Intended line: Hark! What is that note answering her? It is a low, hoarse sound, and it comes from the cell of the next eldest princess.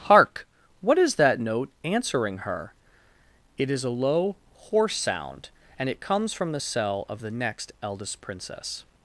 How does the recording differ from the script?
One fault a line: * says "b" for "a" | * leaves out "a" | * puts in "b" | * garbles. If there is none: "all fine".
all fine